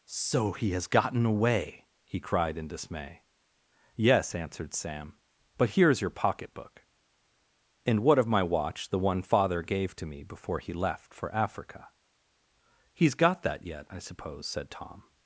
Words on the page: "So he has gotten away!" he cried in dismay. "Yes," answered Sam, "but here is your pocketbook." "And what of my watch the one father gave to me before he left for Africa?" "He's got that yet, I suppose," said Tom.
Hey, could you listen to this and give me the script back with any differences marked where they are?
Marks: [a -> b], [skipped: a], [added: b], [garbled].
"So he has gotten away!" he cried in dismay. "Yes," answered Sam, "but here is your pocketbook." "And what of my watch the one father gave to me before he left for Africa?" "He's got that yet, I suppose," said Tom.